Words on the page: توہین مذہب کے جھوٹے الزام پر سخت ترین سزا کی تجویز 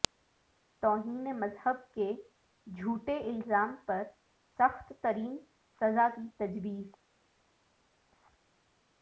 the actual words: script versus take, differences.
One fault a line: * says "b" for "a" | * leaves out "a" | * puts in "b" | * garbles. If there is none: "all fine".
all fine